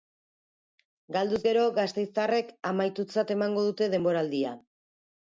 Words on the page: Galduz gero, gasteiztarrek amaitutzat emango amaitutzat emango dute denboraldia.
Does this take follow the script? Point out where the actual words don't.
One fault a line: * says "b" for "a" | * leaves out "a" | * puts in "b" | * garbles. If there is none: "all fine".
* leaves out "amaitutzat emango"